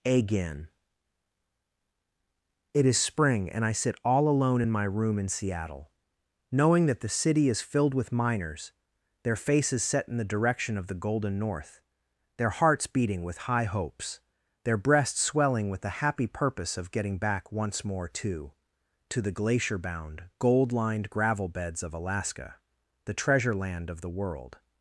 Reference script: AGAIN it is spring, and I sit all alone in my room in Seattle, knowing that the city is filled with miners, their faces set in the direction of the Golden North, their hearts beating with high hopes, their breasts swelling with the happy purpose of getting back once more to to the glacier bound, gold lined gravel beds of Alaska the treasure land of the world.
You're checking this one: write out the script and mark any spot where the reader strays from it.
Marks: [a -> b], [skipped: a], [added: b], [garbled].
AGAIN it is spring, and I sit all alone in my room in Seattle, knowing that the city is filled with miners, their faces set in the direction of the Golden North, their hearts beating with high hopes, their breasts swelling with the happy purpose of getting back once more to to the glacier bound, gold lined gravel beds of Alaska the treasure land of the world.